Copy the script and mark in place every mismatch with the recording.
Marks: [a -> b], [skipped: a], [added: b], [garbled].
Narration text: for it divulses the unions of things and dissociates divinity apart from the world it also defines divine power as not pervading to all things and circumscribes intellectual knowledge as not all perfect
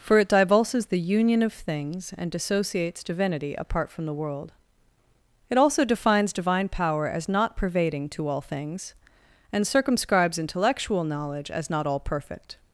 for it divulses the [unions -> union] of things and dissociates divinity apart from the world it also defines divine power as not pervading to all things and circumscribes intellectual knowledge as not all perfect